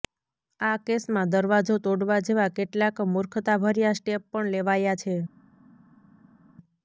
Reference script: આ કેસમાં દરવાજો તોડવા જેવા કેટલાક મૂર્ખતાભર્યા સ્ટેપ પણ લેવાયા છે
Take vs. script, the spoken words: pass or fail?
pass